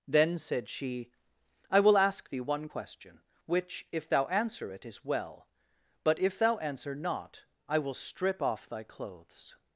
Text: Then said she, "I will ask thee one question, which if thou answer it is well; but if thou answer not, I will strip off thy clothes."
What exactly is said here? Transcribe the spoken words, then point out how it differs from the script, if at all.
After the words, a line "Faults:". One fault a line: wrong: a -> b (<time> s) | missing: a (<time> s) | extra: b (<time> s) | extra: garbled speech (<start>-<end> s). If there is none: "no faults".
Then said she, "I will ask thee one question, which if thou answer it is well; but if thou answer not, I will strip off thy clothes."
Faults:
no faults